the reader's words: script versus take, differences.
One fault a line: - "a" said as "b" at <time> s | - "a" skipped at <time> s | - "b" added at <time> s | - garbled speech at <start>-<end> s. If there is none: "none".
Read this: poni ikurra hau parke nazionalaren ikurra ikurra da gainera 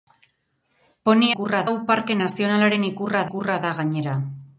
none